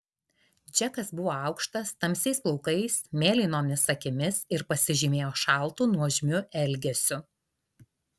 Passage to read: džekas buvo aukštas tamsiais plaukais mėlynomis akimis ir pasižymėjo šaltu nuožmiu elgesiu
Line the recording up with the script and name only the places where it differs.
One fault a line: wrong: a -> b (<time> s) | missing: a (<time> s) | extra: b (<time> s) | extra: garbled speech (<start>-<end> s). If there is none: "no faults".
no faults